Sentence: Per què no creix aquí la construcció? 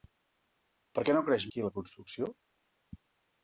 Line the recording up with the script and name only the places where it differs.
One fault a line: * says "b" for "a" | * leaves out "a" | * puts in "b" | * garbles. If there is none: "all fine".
all fine